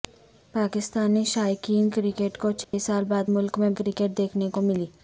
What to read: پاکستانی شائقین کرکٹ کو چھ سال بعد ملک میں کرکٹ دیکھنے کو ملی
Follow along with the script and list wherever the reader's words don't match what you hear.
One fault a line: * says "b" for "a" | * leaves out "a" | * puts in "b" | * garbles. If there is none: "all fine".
all fine